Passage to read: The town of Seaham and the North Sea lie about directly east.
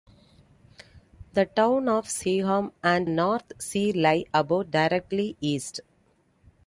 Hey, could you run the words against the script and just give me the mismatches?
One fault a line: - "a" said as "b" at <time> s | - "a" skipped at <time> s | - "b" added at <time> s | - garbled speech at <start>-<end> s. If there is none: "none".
- "the" skipped at 3.1 s